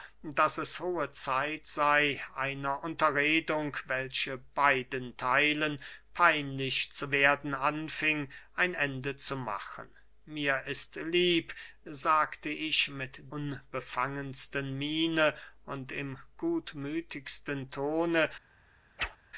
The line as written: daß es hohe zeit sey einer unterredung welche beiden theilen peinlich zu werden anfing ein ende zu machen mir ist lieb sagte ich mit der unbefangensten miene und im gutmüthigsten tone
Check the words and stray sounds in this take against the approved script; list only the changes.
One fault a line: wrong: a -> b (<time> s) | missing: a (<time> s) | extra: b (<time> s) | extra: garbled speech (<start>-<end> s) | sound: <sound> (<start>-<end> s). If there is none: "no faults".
missing: der (13.3 s)
sound: whoosh (19.0-19.2 s)